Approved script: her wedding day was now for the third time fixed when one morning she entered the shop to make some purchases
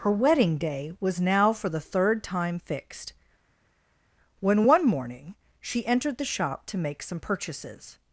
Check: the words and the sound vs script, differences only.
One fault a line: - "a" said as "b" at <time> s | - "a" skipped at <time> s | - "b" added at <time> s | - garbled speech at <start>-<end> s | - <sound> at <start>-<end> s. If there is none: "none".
none